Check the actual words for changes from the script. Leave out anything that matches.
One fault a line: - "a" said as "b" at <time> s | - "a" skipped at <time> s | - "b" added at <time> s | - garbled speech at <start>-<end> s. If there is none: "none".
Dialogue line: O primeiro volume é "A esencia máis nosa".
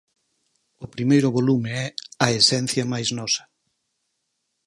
none